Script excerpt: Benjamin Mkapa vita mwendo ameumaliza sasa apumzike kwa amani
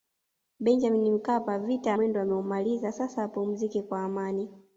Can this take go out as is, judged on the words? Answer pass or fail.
pass